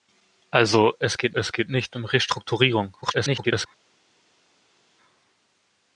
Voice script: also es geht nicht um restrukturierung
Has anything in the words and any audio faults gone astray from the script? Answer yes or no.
yes